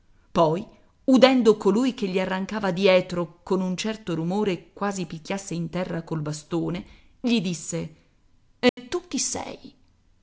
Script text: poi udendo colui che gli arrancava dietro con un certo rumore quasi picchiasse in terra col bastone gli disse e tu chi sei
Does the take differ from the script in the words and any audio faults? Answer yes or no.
yes